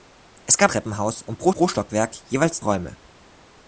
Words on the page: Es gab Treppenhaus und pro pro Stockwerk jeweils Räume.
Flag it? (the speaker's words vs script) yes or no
no